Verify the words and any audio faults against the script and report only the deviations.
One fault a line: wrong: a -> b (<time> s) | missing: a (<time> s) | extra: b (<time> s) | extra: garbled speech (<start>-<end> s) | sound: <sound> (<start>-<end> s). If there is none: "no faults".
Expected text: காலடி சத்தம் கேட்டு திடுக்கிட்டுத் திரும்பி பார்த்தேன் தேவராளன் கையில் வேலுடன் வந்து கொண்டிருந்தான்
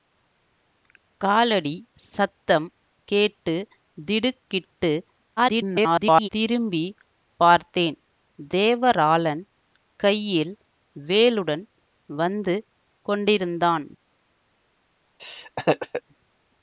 extra: garbled speech (5.4-6.3 s)
sound: laugh (15.2-16.0 s)